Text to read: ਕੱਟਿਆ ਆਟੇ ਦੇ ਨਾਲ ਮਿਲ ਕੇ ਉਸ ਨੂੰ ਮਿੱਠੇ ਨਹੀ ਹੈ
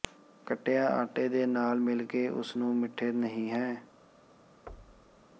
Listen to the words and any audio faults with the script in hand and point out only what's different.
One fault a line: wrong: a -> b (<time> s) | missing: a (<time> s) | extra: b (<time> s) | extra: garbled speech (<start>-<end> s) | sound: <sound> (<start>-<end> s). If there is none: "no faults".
sound: thud (4.7-5.2 s)